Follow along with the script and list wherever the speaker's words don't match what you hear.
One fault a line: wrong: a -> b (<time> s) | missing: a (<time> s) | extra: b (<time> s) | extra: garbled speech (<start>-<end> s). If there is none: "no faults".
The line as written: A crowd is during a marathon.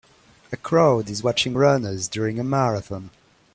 extra: watching runners (1.2 s)